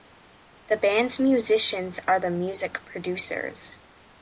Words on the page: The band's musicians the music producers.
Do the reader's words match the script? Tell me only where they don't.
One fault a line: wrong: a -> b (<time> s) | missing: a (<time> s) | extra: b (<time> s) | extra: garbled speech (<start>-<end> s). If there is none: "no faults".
extra: are (2.1 s)